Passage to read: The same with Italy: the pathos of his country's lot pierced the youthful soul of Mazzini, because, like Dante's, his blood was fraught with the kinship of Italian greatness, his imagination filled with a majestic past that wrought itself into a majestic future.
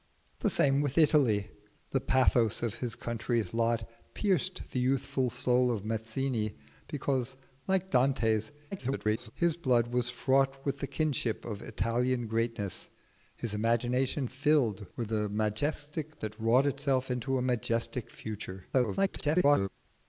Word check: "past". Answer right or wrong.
wrong